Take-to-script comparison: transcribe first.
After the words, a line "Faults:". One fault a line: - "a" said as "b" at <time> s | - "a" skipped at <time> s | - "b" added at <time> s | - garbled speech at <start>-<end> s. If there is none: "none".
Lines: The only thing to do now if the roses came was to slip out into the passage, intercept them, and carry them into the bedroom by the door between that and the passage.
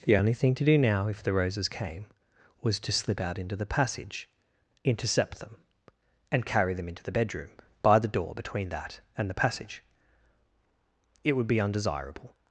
The only thing to do now if the roses came was to slip out into the passage, intercept them, and carry them into the bedroom by the door between that and the passage. It would be undesirable
Faults:
- "It would be undesirable" added at 11.2 s